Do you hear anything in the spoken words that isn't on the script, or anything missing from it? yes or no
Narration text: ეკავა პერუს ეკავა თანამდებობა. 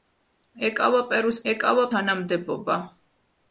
no